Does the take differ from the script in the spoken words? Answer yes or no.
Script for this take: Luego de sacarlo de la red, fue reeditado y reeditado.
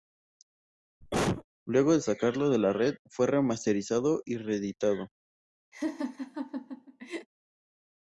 yes